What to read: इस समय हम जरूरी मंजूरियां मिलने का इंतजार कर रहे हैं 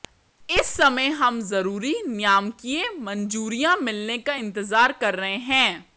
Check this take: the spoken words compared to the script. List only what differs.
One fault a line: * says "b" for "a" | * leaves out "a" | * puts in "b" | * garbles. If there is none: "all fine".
* puts in "नियामकीय"